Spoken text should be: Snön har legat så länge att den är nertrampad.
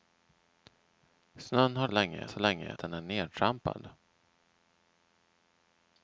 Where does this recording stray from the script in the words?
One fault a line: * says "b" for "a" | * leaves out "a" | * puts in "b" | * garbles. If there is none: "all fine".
* says "länge" for "legat"
* leaves out "att"